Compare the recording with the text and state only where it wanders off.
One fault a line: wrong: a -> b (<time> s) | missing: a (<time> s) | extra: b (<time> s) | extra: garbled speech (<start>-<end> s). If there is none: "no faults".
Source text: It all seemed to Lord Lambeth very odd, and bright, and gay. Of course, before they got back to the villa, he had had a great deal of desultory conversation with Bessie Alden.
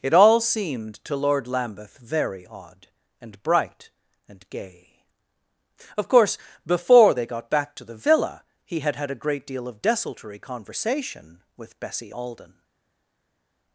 no faults